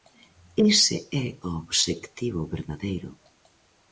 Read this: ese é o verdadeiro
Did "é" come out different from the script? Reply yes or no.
no